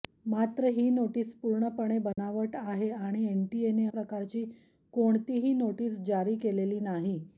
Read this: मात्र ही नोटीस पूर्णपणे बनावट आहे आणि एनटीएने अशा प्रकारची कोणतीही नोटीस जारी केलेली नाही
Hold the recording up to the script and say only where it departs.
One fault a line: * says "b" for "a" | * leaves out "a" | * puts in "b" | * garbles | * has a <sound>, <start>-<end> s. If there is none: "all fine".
* has a dropout, 2.1-2.2 s
* leaves out "अशा"